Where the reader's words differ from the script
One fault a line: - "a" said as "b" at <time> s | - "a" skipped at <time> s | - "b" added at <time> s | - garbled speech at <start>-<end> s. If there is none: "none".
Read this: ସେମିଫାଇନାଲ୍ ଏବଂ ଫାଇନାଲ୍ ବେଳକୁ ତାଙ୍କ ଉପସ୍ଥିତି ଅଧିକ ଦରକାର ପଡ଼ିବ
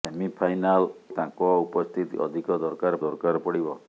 - "ଏବଂ ଫାଇନାଲ୍ ବେଳକୁ" skipped at 0.8 s
- "ଦରକାର" added at 3.0 s